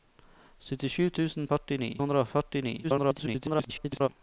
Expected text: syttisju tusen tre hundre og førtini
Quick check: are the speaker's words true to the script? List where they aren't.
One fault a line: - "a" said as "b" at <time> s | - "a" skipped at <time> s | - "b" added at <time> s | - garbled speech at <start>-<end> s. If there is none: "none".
- "tre" said as "førtini" at 1.5 s
- garbled speech at 2.8-4.1 s